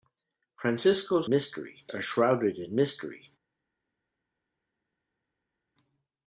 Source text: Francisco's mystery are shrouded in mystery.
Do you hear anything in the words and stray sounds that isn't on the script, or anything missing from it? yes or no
no